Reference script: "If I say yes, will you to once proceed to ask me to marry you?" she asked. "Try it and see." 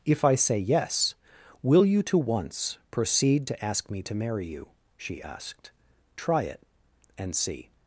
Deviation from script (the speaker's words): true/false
false